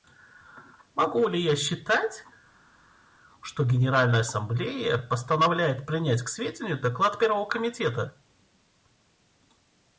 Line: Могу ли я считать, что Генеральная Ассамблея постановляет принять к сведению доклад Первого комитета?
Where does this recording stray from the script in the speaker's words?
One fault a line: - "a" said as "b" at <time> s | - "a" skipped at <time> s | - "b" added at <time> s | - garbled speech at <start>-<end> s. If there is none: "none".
none